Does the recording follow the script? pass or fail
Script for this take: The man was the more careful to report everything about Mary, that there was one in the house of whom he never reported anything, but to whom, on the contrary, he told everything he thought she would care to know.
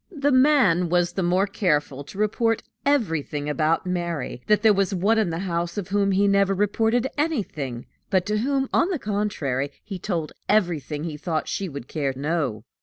fail